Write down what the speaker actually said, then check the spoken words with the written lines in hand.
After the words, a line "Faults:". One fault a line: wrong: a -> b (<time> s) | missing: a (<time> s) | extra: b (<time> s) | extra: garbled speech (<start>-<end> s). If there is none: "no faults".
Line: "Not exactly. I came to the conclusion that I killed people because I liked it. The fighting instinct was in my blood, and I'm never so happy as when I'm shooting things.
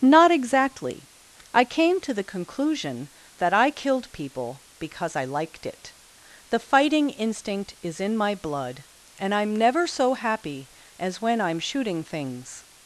"Not exactly. I came to the conclusion that I killed people because I liked it. The fighting instinct is in my blood, and I'm never so happy as when I'm shooting things.
Faults:
wrong: was -> is (7.8 s)